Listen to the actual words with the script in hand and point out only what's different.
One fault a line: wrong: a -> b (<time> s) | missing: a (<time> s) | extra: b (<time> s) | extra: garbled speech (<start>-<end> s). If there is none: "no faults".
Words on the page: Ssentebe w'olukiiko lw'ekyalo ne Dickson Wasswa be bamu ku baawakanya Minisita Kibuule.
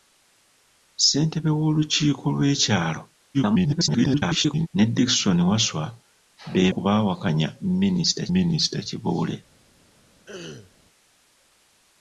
extra: garbled speech (3.3-4.7 s)
missing: bamu (6.6 s)
extra: Minisita (8.3 s)